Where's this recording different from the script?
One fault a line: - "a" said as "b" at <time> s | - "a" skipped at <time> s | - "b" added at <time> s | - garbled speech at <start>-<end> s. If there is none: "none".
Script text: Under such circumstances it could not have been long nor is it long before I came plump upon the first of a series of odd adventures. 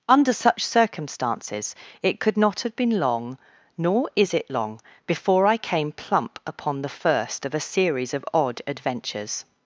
none